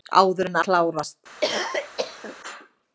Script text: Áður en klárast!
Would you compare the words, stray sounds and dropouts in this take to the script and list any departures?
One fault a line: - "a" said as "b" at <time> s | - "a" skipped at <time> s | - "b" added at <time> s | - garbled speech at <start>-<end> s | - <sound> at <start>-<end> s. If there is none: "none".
- cough at 1.4-2.4 s